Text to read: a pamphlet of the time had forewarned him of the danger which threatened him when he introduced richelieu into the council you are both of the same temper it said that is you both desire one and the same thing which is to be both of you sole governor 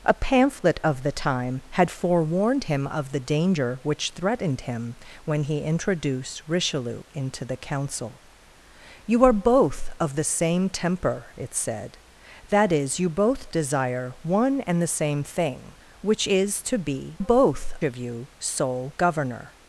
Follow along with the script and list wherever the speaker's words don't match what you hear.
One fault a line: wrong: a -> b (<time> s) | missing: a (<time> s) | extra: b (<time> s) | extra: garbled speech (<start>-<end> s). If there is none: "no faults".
no faults